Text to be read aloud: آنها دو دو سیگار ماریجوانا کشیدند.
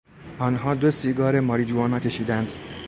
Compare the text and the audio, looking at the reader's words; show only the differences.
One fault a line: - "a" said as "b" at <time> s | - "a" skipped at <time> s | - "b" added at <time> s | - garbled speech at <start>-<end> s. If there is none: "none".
- "دو" skipped at 0.9 s